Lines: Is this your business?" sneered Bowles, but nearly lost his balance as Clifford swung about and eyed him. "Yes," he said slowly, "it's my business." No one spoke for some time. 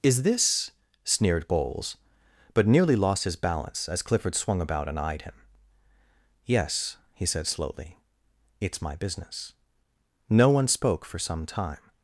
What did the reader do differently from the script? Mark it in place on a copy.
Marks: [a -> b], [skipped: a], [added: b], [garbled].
Is this [skipped: your business?"] sneered Bowles, but nearly lost his balance as Clifford swung about and eyed him. "Yes," he said slowly, "it's my business." No one spoke for some time.